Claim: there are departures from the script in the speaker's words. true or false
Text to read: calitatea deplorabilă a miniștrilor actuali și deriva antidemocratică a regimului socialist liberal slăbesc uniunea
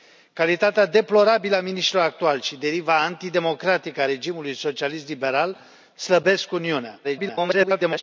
true